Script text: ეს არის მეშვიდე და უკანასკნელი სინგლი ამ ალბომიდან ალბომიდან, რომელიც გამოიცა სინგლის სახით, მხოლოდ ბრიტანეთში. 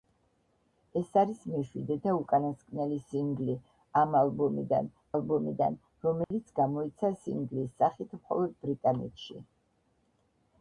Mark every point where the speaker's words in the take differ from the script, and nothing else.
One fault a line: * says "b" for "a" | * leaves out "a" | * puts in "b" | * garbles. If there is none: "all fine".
all fine